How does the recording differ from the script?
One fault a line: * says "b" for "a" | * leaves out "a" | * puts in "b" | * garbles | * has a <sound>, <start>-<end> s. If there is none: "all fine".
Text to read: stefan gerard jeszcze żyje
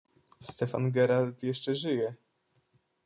all fine